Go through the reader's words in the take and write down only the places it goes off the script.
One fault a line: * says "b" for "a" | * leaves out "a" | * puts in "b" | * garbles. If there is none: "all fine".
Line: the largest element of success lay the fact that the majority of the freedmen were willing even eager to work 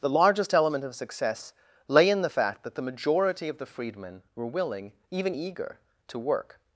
* puts in "in"